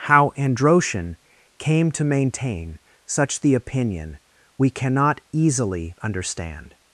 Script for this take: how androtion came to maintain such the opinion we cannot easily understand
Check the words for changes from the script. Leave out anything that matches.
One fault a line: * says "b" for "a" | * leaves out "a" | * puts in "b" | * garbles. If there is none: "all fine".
all fine